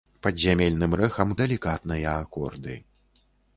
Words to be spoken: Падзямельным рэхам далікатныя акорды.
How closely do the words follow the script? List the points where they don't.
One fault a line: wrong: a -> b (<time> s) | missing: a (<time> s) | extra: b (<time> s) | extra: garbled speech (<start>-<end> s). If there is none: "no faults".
no faults